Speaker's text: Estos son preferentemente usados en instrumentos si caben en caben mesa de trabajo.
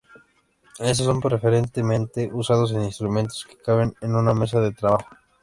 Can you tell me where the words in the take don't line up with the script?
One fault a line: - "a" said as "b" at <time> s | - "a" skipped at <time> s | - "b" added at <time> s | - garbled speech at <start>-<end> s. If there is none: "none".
- "si" said as "que" at 3.5 s
- "caben" said as "una" at 4.2 s